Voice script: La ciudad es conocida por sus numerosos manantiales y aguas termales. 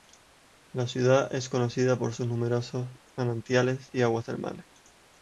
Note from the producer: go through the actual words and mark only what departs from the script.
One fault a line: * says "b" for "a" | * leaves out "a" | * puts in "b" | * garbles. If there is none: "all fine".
all fine